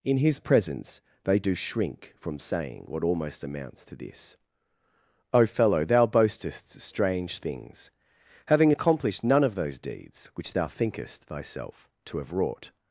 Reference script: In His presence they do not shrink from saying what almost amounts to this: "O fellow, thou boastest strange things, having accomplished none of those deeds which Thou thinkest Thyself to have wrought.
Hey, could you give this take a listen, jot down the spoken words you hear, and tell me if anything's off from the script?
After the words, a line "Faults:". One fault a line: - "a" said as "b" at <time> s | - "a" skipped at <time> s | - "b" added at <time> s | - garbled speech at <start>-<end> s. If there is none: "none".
In His presence they do shrink from saying what almost amounts to this: "O fellow, thou boastest strange things, having accomplished none of those deeds which Thou thinkest Thyself to have wrought.
Faults:
- "not" skipped at 1.5 s